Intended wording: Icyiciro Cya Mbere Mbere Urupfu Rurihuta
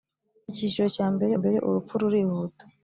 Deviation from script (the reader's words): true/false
false